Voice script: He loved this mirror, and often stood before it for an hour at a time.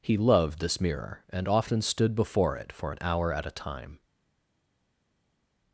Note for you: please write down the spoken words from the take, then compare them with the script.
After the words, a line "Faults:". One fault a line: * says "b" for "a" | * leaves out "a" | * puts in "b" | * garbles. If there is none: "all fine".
He loved this mirror, and often stood before it for an hour at a time.
Faults:
all fine